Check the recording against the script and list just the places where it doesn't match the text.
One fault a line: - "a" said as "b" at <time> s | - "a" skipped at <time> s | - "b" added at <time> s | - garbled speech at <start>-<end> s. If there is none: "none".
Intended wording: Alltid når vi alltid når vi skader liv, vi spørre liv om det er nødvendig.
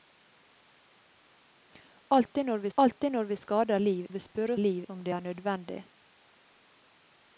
none